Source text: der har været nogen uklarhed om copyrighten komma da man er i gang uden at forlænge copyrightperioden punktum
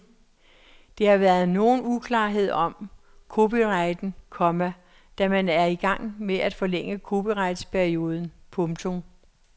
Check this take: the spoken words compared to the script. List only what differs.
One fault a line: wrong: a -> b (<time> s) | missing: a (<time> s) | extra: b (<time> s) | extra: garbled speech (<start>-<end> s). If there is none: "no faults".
wrong: uden -> med (6.2 s)